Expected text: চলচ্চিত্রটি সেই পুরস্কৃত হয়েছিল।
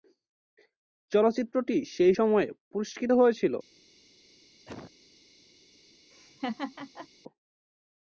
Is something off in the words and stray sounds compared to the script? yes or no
yes